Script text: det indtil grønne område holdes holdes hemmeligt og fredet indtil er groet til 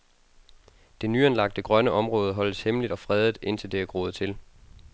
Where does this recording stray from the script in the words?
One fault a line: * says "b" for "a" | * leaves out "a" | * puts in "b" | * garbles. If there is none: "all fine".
* says "nyanlagte" for "indtil"
* leaves out "holdes"
* puts in "det"